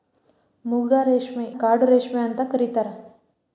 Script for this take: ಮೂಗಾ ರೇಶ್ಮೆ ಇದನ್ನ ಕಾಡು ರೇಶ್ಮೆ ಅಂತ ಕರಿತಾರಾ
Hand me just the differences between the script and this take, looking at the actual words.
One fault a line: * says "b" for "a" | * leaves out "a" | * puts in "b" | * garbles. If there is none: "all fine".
* leaves out "ಇದನ್ನ"